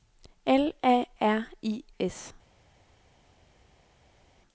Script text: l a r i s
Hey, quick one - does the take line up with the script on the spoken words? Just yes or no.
yes